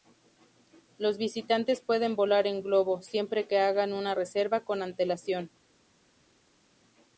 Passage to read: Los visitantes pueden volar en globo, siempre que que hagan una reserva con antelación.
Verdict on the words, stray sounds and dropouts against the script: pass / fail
fail